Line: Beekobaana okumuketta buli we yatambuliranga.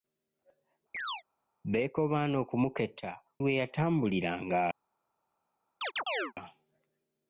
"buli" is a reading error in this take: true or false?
true